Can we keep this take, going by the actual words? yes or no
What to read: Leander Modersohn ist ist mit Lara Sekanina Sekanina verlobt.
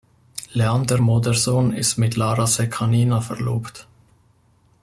no